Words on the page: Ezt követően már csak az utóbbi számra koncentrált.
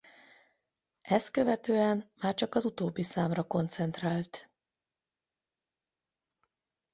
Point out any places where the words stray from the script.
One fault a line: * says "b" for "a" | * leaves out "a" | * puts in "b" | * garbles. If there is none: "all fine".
all fine